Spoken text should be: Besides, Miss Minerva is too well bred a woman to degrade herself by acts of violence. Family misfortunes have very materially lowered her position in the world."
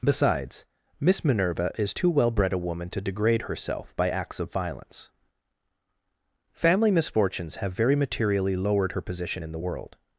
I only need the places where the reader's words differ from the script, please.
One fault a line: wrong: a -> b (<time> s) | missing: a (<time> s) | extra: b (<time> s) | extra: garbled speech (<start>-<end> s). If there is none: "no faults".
no faults